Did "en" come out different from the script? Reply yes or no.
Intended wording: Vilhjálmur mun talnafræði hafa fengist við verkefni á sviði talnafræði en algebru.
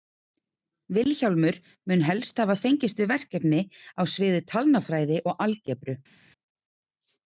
yes